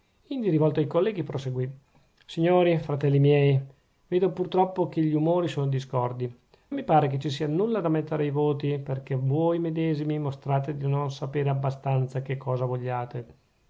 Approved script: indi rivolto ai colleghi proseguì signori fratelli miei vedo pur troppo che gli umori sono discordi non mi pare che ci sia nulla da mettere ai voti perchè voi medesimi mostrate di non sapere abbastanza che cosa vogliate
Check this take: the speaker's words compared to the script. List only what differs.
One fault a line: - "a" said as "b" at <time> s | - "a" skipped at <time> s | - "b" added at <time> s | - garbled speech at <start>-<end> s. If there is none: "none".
- "non" skipped at 6.3 s